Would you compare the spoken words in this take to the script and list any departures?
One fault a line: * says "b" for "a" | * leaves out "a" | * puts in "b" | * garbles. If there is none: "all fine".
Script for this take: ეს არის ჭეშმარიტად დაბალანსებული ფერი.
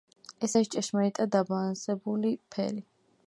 all fine